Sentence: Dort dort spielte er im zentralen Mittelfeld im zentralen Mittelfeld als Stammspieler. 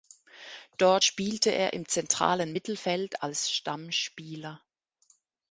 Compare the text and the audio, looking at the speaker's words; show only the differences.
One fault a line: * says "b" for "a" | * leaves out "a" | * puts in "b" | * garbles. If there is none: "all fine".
* leaves out "dort"
* leaves out "im zentralen Mittelfeld"